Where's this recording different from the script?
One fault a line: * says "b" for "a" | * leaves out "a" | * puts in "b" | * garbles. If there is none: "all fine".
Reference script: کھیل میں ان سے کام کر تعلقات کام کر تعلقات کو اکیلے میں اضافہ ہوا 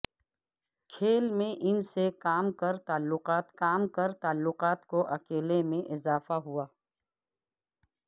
all fine